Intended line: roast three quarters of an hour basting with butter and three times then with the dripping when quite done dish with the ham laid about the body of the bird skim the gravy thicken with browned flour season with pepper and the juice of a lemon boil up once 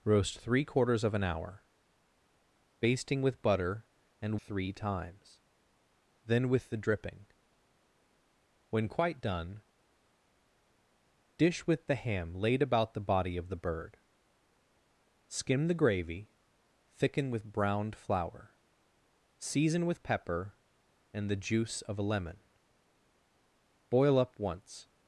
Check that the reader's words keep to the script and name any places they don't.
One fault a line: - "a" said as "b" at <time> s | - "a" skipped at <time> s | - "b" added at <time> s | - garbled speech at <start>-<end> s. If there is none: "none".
none